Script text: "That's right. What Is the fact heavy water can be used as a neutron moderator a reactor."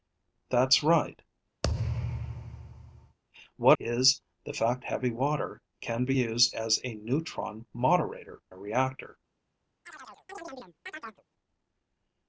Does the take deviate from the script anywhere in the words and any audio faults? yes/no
yes